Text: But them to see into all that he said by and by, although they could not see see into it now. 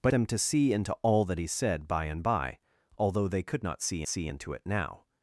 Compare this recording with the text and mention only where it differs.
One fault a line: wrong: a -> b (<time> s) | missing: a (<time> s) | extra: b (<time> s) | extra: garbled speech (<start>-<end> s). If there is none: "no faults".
no faults